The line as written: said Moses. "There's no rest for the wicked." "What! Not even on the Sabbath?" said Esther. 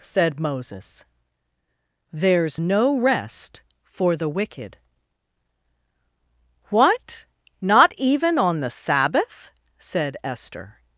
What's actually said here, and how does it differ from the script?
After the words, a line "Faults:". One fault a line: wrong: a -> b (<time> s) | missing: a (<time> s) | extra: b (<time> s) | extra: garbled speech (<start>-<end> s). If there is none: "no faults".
said Moses. "There's no rest for the wicked." "What! Not even on the Sabbath?" said Esther.
Faults:
no faults